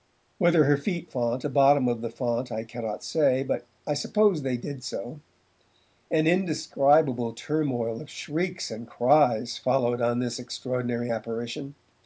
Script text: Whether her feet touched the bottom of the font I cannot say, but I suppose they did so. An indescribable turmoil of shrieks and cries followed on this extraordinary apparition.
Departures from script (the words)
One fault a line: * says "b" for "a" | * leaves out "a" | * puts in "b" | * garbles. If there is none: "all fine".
* says "font" for "touched"